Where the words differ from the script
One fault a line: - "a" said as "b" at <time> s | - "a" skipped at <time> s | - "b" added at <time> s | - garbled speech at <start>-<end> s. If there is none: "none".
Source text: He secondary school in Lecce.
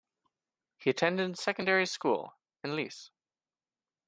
- "attended" added at 0.9 s